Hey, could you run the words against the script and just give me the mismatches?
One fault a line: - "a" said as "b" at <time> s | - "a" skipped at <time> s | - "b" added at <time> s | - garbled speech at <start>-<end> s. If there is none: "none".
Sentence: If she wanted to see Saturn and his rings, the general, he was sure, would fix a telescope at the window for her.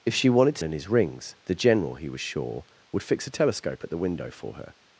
- "see Saturn" skipped at 0.6 s